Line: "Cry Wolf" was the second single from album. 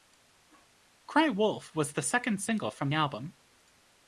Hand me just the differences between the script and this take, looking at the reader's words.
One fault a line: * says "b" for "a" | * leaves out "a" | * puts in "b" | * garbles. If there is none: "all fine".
all fine